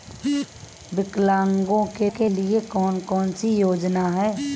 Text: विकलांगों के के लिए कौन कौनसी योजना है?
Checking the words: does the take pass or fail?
pass